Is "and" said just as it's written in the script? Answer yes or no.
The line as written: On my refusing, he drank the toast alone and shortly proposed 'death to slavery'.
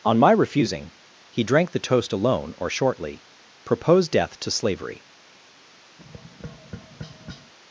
no